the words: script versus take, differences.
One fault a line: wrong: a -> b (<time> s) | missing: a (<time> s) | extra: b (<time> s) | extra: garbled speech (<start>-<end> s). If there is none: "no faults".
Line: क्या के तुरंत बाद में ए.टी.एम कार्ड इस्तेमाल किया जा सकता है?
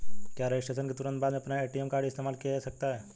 extra: रजिस्ट्रेशन (0.5 s)
extra: अपना (1.4 s)